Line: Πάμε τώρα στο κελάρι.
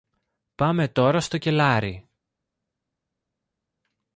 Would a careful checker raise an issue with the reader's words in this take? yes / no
no